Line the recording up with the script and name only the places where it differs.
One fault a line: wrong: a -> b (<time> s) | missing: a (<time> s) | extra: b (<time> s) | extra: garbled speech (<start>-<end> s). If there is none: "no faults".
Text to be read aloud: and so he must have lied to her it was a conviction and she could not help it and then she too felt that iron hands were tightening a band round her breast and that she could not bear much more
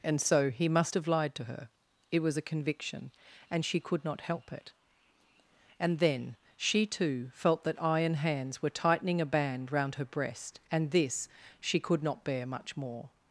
wrong: that -> this (10.9 s)